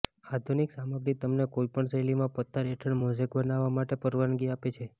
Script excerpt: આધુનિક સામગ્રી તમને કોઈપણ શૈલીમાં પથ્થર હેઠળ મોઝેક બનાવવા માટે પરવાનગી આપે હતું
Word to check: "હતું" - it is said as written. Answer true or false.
false